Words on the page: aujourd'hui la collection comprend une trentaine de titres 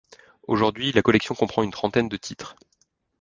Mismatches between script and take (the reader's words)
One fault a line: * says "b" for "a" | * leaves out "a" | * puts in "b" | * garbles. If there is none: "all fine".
all fine